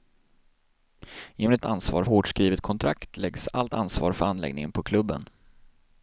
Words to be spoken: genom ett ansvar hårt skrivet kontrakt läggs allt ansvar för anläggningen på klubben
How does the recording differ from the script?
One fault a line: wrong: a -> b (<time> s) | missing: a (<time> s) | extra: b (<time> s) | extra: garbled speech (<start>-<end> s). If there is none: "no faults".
no faults